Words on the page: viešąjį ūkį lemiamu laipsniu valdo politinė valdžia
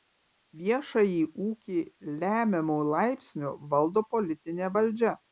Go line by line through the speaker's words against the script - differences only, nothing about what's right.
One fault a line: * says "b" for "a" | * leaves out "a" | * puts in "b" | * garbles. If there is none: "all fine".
all fine